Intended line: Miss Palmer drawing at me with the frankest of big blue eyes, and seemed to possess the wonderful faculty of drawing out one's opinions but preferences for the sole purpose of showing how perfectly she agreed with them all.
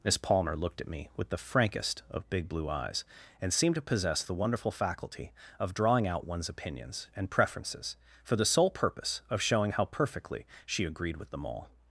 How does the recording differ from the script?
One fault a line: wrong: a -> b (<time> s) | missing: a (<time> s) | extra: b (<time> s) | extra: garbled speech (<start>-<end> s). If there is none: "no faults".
wrong: drawing -> looked (0.6 s)
wrong: but -> and (7.2 s)